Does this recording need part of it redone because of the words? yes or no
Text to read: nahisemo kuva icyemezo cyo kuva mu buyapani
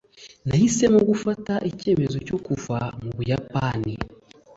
yes